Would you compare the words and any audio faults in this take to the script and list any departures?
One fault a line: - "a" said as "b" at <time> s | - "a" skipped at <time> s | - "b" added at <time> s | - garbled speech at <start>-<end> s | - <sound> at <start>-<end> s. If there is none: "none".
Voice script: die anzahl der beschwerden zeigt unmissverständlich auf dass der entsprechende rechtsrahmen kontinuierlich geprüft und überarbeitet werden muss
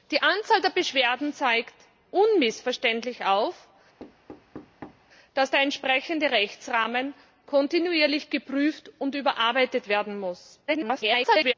- thud at 4.0-5.1 s
- garbled speech at 10.7-11.5 s